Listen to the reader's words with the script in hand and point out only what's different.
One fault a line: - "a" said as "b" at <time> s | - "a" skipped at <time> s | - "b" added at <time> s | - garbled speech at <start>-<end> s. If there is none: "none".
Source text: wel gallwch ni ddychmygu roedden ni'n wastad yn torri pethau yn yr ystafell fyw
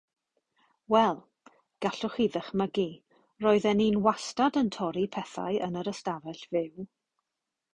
- "ni" said as "chi" at 2.1 s